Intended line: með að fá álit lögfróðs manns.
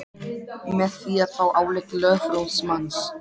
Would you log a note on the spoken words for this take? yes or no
yes